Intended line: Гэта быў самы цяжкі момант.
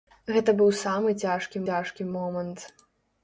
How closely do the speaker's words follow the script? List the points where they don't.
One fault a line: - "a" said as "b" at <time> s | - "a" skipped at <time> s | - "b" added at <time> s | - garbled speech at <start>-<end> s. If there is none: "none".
- "цяжкі" added at 1.7 s